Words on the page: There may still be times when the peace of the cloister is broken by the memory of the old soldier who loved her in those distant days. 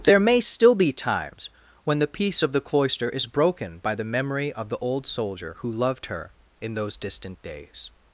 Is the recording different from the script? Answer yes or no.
no